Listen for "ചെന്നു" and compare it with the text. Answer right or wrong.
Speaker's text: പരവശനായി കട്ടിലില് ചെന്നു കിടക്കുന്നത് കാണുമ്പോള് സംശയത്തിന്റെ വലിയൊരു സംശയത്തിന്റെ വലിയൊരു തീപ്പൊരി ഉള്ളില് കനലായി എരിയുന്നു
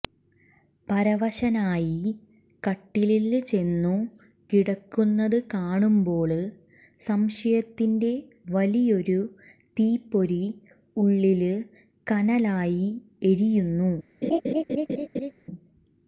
right